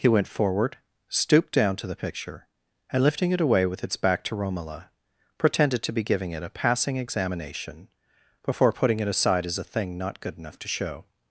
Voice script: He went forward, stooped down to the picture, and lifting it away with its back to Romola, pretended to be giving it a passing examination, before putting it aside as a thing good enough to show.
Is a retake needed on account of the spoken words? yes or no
yes